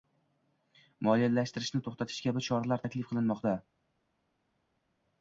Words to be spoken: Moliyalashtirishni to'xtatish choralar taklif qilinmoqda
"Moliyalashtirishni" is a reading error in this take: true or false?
false